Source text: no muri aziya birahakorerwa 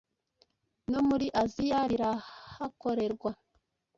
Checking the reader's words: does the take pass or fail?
pass